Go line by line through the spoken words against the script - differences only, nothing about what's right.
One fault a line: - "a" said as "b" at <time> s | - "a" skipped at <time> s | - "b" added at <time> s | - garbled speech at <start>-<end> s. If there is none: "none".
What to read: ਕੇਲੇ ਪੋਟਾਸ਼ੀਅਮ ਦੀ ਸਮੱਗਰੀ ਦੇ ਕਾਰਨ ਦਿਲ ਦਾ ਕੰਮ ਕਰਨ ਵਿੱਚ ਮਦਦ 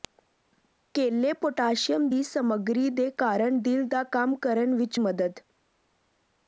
none